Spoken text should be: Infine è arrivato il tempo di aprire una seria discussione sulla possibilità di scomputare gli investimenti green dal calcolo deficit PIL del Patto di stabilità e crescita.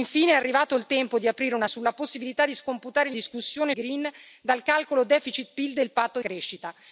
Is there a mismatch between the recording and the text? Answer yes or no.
yes